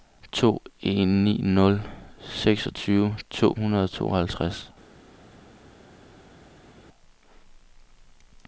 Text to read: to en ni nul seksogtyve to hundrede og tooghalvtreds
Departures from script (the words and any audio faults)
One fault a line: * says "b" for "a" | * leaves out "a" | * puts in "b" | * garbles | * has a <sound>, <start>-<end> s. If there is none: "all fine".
all fine